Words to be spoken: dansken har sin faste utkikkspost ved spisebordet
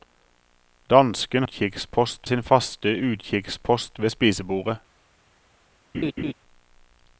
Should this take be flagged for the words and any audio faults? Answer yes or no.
yes